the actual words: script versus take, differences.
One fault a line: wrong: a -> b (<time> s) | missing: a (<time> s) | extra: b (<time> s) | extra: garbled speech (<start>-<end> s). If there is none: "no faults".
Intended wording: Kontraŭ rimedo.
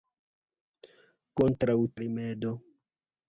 no faults